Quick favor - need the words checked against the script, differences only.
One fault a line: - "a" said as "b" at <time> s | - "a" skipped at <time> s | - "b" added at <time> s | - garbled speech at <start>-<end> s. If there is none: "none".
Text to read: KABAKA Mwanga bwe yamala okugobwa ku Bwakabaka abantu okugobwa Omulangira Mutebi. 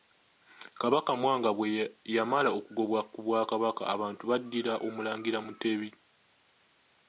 - "okugobwa" said as "baddira" at 4.3 s